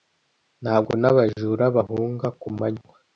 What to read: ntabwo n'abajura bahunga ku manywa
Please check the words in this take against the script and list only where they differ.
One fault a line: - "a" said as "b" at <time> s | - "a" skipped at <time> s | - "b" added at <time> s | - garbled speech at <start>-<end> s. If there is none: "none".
none